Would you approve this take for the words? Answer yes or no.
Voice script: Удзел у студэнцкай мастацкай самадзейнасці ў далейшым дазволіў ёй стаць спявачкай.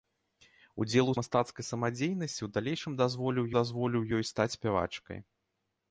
no